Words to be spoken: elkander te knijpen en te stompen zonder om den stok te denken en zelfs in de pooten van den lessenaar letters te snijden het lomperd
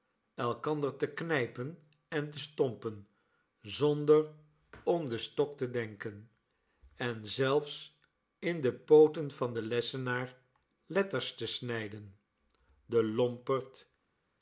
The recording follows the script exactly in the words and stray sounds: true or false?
false